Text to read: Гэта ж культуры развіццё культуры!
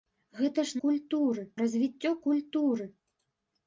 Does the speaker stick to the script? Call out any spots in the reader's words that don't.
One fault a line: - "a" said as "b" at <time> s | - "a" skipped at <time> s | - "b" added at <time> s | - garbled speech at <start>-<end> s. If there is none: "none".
none